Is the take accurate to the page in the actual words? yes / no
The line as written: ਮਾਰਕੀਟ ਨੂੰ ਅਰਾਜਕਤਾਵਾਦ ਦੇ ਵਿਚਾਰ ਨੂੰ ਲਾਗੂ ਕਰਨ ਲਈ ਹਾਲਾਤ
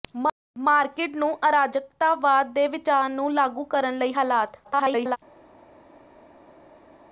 no